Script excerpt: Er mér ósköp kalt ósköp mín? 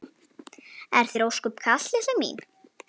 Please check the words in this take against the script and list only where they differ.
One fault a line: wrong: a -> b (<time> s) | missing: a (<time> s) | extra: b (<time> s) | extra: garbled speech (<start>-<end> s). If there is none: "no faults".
wrong: mér -> þér (1.1 s)
wrong: ósköp -> litla (2.0 s)